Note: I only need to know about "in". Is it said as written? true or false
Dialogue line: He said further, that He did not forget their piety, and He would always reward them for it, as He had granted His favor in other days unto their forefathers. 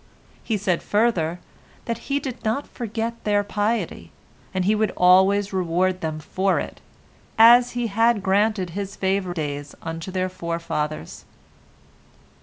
false